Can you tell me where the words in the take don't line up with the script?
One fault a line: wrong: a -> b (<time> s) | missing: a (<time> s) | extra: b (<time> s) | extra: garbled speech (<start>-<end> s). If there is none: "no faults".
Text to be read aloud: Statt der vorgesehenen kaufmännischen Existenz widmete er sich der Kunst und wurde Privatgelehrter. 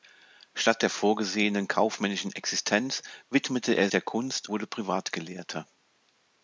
missing: sich (3.9 s)
missing: und (4.5 s)